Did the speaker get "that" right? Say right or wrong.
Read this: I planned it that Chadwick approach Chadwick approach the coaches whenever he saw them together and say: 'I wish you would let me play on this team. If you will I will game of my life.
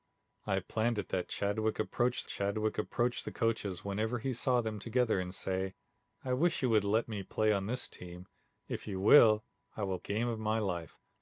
right